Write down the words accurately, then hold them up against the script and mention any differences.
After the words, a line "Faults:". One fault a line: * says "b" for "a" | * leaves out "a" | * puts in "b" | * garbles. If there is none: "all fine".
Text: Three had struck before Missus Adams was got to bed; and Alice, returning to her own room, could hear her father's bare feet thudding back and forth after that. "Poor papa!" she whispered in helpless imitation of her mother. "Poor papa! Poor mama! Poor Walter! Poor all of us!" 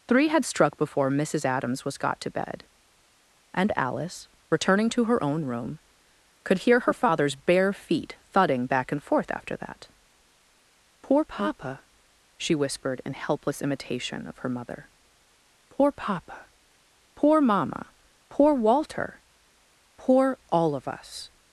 Three had struck before Missus Adams was got to bed; and Alice, returning to her own room, could hear her father's bare feet thudding back and forth after that. "Poor papa!" she whispered in helpless imitation of her mother. "Poor papa! Poor mama! Poor Walter! Poor all of us!"
Faults:
all fine